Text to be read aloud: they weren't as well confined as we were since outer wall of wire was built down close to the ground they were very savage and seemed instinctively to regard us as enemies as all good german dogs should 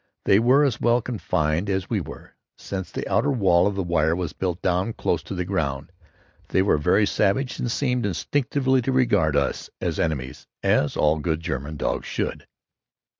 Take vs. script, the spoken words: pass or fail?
fail